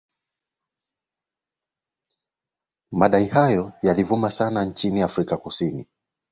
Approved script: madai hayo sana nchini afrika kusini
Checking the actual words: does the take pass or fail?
fail